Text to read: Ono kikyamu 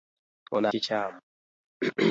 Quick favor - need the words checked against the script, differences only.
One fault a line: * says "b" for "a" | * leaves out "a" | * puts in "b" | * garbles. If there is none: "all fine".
all fine